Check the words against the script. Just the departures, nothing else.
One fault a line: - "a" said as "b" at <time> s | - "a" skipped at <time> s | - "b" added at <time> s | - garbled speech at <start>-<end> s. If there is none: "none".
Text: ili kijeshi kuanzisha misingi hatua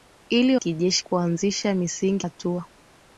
none